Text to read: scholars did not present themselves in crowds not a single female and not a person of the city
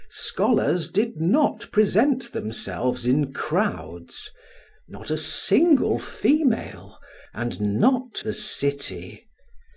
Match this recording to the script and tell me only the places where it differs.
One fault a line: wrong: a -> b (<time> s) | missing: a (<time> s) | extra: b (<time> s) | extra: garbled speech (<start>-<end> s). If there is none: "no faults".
missing: a person of (8.2 s)